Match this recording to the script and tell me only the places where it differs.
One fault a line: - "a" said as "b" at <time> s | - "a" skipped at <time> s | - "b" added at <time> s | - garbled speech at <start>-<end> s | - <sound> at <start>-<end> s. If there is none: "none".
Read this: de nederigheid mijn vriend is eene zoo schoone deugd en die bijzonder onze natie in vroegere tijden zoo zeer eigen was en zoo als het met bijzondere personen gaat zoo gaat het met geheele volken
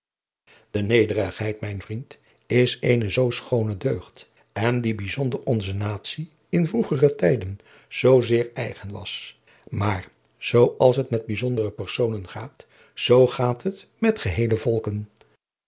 - "en" said as "maar" at 9.7 s